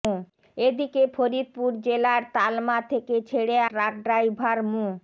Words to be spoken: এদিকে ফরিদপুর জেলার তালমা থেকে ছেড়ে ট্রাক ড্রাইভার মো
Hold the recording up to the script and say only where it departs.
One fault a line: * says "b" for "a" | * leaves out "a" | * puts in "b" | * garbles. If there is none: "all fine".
all fine